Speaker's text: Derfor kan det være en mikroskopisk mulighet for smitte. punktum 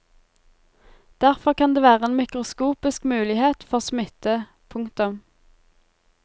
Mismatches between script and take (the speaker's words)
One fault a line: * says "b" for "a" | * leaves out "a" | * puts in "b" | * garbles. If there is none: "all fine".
all fine